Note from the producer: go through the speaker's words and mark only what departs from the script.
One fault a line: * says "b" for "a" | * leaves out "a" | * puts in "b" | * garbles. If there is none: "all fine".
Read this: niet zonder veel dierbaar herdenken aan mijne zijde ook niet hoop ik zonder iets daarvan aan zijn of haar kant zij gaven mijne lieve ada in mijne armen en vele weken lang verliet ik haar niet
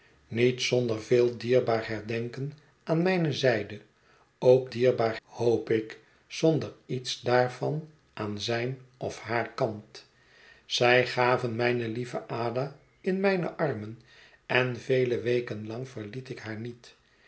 * says "dierbaar" for "niet"